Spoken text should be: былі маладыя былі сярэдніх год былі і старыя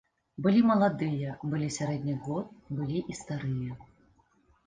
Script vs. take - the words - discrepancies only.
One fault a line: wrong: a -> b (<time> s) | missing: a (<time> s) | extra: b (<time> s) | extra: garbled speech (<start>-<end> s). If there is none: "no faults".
no faults